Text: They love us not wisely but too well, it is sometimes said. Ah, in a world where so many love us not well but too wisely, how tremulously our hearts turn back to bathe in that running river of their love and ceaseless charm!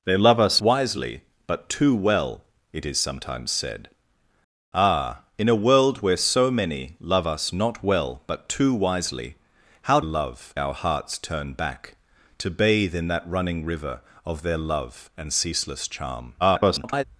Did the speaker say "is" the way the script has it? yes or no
yes